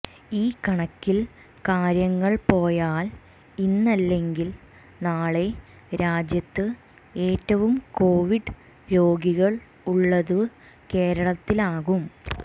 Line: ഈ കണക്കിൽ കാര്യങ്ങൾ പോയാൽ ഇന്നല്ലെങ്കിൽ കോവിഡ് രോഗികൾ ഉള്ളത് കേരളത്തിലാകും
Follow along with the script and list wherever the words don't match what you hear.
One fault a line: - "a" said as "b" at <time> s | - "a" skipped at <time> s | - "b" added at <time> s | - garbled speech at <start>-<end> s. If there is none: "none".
- "നാളെ രാജ്യത്ത് ഏറ്റവും" added at 5.0 s